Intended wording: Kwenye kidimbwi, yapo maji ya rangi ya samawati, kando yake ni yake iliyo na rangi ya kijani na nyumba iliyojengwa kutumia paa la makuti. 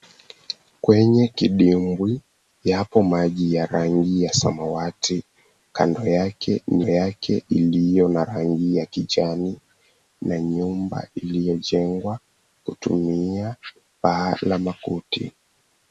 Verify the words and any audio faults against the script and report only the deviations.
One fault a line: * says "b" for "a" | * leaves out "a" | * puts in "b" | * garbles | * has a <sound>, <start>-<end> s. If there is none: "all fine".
all fine